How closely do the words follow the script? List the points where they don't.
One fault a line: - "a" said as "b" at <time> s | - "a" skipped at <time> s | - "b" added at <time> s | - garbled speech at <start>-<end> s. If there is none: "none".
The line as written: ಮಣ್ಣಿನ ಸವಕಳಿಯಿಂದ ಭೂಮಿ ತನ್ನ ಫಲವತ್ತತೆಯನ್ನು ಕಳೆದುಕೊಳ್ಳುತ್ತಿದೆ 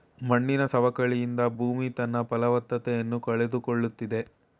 none